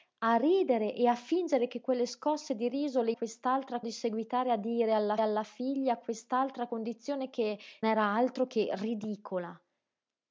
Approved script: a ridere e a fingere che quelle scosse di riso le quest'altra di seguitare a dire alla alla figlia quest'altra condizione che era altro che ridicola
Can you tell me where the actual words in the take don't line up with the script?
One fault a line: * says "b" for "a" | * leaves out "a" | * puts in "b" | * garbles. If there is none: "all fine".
all fine